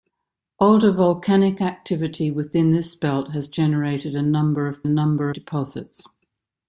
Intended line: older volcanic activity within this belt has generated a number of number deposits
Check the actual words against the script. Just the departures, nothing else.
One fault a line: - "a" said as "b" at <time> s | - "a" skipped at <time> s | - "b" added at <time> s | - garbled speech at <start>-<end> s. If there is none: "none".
none